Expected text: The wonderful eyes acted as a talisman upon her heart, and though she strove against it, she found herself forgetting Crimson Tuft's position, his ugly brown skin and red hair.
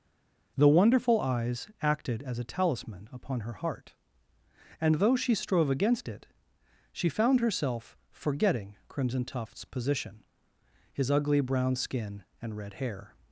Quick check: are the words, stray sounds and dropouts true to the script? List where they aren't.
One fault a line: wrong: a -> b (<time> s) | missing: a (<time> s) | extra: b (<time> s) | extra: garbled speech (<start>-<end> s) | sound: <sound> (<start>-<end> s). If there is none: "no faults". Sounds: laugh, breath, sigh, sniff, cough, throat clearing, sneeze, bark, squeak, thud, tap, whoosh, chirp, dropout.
no faults